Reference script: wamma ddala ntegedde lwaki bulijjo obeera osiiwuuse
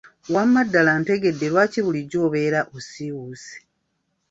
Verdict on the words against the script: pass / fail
pass